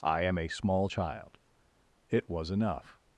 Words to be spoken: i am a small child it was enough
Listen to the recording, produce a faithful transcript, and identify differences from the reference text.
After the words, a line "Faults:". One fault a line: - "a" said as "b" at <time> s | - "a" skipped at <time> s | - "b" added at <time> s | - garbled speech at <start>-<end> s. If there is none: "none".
i am a small child it was enough
Faults:
none